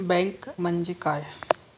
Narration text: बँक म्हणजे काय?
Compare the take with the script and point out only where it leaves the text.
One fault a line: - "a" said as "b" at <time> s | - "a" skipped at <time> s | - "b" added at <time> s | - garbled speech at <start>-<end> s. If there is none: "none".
none